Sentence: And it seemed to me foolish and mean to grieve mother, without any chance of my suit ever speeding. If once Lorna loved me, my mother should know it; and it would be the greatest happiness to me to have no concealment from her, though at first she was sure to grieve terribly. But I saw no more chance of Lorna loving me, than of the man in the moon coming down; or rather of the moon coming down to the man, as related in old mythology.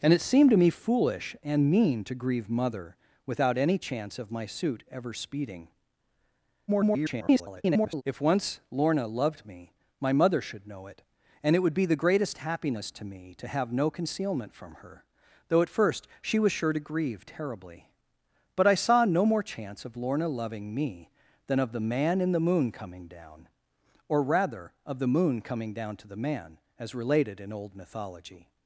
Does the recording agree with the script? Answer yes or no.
no